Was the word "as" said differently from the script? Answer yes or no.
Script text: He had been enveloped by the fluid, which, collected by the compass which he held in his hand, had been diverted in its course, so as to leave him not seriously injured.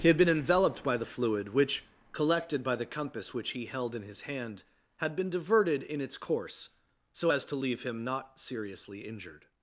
no